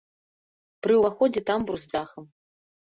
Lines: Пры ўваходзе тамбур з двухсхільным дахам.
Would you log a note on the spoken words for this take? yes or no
yes